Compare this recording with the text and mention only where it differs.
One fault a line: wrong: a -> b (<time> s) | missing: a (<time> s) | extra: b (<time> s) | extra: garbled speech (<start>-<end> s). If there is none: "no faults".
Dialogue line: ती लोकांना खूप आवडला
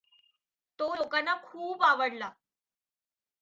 wrong: ती -> तो (0.8 s)